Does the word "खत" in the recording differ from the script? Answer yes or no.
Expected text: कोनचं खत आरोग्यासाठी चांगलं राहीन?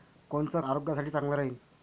yes